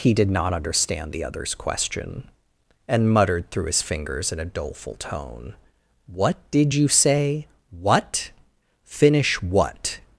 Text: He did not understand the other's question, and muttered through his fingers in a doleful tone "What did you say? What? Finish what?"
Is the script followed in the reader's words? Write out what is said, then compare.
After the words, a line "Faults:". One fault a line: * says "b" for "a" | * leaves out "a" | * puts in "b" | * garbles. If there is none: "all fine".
He did not understand the other's question, and muttered through his fingers in a doleful tone "What did you say? What? Finish what?"
Faults:
all fine